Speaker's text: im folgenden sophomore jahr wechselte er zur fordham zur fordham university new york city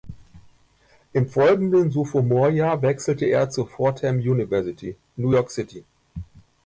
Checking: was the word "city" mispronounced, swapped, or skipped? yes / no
no